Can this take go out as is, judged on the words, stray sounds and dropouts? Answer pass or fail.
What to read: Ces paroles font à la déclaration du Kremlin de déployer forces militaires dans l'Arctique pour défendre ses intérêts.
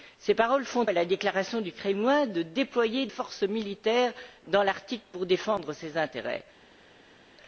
pass